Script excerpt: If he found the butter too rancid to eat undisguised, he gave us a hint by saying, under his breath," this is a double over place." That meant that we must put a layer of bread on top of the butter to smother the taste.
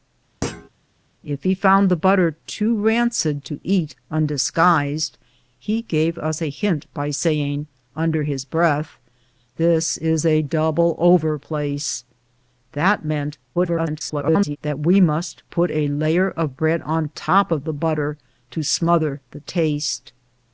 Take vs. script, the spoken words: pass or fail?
fail